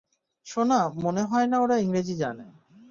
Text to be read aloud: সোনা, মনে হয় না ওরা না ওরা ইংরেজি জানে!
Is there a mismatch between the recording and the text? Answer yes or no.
yes